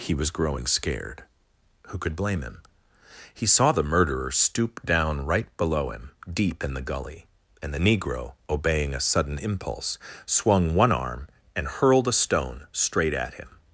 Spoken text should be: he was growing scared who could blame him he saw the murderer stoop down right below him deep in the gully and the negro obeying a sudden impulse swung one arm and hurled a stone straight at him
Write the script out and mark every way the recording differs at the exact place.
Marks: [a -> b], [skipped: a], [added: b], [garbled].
he was growing scared who could blame him he saw the murderer stoop down right below him deep in the gully and the negro obeying a sudden impulse swung one arm and hurled a stone straight at him